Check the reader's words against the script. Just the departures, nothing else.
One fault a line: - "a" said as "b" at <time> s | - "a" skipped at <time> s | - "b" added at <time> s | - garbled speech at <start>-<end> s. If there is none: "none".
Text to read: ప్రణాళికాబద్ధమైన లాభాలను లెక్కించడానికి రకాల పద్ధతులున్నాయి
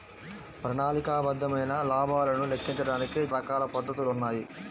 none